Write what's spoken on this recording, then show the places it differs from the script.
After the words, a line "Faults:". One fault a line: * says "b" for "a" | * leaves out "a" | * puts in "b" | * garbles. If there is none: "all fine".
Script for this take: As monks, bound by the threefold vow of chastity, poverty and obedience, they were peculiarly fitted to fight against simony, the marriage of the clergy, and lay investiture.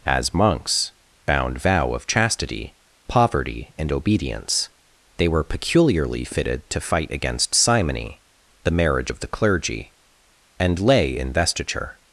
As monks, bound vow of chastity, poverty and obedience, they were peculiarly fitted to fight against simony, the marriage of the clergy, and lay investiture.
Faults:
* leaves out "by the threefold"